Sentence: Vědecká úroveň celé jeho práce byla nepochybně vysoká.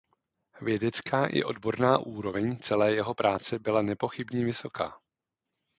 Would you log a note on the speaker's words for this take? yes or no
yes